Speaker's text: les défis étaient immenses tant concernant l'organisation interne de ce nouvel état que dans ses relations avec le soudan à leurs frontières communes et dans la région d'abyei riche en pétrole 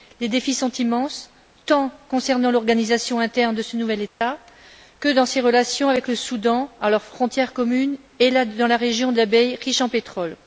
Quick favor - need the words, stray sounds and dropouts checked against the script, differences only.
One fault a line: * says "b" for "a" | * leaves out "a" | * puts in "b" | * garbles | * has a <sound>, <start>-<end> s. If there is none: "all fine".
* says "sont" for "étaient"
* has a dropout, 4.1-4.2 s